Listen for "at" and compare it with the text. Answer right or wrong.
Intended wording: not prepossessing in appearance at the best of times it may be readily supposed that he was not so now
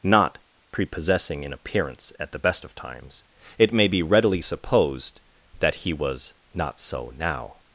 right